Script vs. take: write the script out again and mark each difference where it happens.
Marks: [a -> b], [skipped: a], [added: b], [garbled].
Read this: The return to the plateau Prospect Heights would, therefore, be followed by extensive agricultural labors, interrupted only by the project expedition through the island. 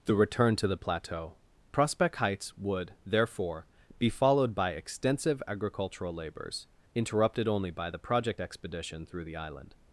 The return to the plateau Prospect Heights would, therefore, be followed by extensive agricultural labors, interrupted only by the project expedition through the island.